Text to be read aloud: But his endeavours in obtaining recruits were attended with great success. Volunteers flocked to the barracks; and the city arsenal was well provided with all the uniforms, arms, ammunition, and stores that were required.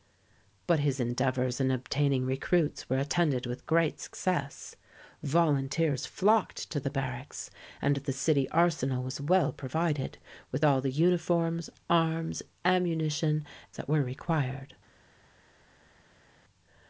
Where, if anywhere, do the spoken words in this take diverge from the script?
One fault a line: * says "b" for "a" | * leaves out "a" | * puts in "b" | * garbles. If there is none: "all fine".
* leaves out "and stores"